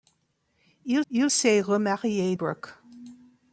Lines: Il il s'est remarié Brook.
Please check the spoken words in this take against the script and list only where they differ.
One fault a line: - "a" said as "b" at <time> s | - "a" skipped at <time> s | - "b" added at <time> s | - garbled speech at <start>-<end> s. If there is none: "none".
none